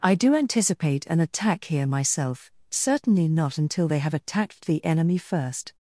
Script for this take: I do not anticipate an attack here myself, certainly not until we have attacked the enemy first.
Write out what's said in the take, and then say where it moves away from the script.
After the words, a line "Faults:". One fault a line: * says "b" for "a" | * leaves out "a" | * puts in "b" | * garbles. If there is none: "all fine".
I do anticipate an attack here myself, certainly not until they have attacked the enemy first.
Faults:
* leaves out "not"
* says "they" for "we"